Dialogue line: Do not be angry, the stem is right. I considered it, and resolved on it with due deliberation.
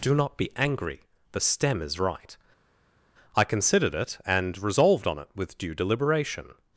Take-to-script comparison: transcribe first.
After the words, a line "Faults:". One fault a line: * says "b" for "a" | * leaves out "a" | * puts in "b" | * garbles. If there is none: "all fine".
Do not be angry, the stem is right. I considered it, and resolved on it with due deliberation.
Faults:
all fine